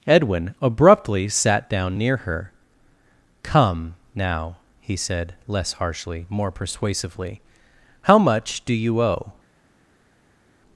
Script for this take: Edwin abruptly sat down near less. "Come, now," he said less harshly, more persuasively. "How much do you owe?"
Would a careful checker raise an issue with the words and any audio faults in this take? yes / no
yes